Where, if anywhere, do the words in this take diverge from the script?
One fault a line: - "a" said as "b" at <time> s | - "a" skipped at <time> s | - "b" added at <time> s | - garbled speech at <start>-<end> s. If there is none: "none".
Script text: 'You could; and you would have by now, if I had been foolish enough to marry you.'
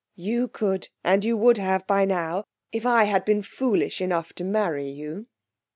none